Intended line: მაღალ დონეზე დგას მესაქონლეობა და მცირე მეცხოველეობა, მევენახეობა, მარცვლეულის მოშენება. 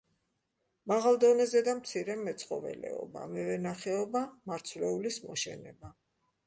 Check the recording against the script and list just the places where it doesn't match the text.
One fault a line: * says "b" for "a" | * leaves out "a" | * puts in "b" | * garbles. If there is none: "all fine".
* leaves out "დგას მესაქონლეობა"